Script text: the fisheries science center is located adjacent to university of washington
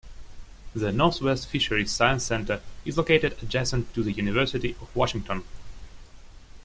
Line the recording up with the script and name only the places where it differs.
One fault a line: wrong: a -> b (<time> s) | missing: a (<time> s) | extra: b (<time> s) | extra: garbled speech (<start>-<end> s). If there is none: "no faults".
extra: northwest (0.9 s)
extra: the (4.0 s)